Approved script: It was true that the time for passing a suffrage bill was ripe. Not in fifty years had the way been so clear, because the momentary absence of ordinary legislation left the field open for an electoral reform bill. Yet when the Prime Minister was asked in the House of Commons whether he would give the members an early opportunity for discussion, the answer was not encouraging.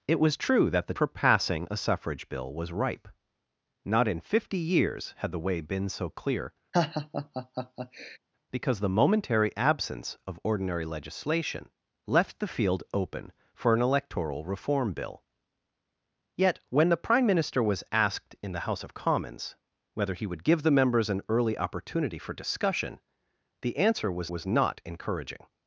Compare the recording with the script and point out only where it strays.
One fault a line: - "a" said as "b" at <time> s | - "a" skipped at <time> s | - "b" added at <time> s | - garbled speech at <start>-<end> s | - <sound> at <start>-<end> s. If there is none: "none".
- "time" skipped at 0.9 s
- laugh at 6.7-8.2 s
- "was" added at 24.3 s